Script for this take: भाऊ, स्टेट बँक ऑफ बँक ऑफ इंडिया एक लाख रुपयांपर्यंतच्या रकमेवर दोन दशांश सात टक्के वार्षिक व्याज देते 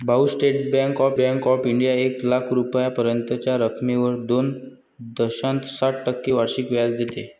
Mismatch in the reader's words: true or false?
false